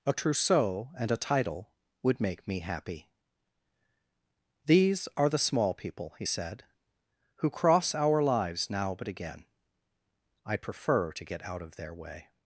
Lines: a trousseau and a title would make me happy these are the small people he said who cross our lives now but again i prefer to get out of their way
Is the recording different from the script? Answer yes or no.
no